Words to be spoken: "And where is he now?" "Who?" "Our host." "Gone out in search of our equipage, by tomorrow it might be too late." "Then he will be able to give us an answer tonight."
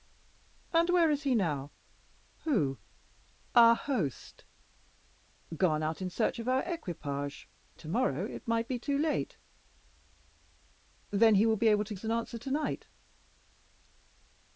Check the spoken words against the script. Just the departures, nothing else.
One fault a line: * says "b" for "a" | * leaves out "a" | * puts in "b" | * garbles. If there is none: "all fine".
* leaves out "by"
* leaves out "give"